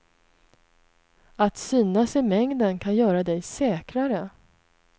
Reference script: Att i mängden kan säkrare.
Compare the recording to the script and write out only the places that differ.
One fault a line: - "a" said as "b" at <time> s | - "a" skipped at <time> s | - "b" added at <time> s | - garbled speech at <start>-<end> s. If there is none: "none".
- "synas" added at 1.6 s
- "göra dig" added at 3.0 s